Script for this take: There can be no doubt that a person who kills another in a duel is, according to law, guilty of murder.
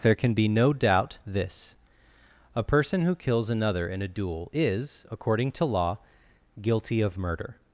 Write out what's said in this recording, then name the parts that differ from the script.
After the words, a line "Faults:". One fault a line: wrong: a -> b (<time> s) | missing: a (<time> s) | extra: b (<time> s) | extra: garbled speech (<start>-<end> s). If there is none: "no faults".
There can be no doubt this a person who kills another in a duel is, according to law, guilty of murder.
Faults:
wrong: that -> this (1.3 s)